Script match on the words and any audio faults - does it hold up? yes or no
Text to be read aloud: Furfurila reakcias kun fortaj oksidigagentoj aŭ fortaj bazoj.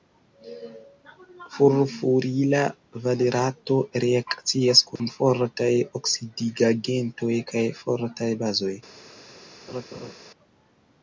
no